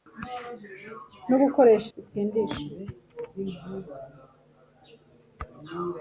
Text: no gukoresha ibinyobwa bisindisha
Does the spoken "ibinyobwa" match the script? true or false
false